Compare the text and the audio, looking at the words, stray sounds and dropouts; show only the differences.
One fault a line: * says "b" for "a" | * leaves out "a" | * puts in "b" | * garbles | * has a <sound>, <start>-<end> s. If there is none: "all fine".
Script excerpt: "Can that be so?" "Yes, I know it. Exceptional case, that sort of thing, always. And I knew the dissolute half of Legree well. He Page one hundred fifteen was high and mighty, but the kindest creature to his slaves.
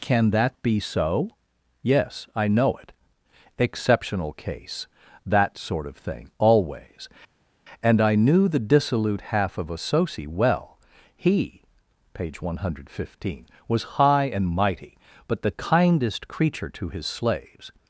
* says "Associ" for "Legree"